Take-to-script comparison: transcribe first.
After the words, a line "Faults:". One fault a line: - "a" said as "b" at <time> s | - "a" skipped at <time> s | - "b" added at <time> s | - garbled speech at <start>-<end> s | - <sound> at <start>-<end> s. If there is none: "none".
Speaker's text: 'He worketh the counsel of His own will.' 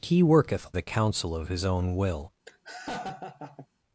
'He worketh the counsel of His own will.'
Faults:
- laugh at 2.5-3.7 s